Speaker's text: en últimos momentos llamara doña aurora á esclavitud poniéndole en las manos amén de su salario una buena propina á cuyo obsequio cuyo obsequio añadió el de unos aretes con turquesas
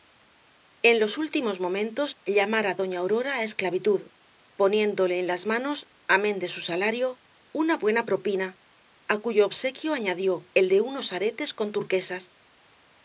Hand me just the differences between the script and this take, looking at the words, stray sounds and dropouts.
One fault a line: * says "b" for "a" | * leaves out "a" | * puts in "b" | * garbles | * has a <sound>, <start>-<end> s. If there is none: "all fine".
* puts in "los"
* leaves out "cuyo obsequio"